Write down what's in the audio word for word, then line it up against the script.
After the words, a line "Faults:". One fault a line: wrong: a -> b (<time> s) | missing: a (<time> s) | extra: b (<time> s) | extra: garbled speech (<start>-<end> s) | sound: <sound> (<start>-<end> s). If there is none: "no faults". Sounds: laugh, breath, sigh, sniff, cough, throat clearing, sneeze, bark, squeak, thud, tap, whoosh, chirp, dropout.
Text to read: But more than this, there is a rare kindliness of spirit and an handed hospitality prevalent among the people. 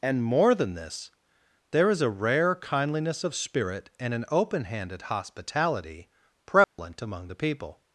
And more than this, there is a rare kindliness of spirit and an open handed hospitality prevalent among the people.
Faults:
wrong: But -> And (0.0 s)
extra: open (4.3 s)
sound: dropout (6.6-6.8 s)